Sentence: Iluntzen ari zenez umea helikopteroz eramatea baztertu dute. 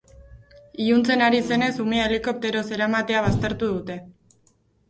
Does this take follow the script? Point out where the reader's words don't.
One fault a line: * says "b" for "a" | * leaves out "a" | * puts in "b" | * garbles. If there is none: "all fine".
all fine